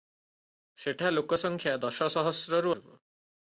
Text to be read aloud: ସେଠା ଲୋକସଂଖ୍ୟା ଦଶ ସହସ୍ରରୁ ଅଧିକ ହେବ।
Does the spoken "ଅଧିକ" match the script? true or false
false